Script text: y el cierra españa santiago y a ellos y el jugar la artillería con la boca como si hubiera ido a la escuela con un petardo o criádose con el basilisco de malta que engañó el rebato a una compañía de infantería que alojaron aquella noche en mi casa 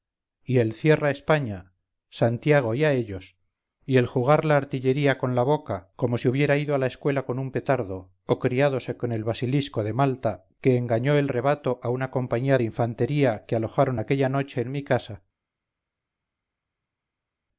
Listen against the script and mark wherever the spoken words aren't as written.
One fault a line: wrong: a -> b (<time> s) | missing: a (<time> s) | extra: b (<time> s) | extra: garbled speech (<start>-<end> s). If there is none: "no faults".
no faults